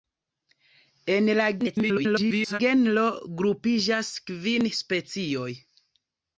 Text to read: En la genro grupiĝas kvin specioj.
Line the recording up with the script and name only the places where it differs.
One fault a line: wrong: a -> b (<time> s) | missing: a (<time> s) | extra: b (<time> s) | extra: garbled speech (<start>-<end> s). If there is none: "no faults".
extra: garbled speech (1.6-2.6 s)